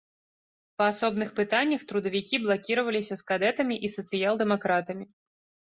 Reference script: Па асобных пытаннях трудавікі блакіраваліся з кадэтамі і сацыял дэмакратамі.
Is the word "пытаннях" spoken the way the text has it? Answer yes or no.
yes